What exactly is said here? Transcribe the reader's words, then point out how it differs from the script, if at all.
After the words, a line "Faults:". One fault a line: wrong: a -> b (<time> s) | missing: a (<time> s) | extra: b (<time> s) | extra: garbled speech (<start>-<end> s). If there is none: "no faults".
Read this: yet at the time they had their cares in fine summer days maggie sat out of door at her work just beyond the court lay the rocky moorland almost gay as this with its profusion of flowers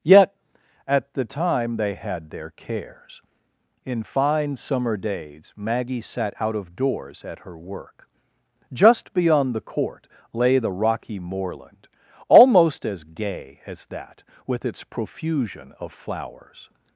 yet at the time they had their cares in fine summer days maggie sat out of doors at her work just beyond the court lay the rocky moorland almost as gay as that with its profusion of flowers
Faults:
wrong: door -> doors (6.7 s)
extra: as (12.8 s)
wrong: this -> that (13.9 s)